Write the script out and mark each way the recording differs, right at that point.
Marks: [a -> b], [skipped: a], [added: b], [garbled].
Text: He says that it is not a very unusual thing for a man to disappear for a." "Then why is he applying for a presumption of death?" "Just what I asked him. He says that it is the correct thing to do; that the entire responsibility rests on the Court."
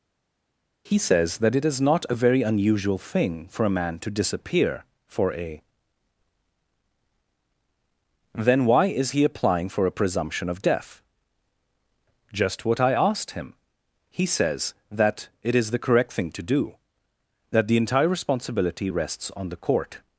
He says that it is not a very unusual thing for a man to disappear for a." "Then why is he applying for a presumption of death?" "Just what I asked him. He says that it is the correct thing to do; that the entire responsibility rests on the Court."